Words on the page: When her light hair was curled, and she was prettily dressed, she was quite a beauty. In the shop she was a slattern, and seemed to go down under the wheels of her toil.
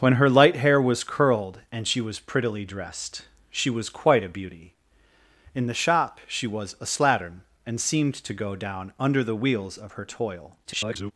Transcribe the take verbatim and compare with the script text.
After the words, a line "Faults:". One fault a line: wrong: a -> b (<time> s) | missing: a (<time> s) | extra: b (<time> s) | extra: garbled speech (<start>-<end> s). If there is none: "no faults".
When her light hair was curled, and she was prettily dressed, she was quite a beauty. In the shop she was a slattern, and seemed to go down under the wheels of her toil. [garbled]
Faults:
extra: garbled speech (10.6-11.1 s)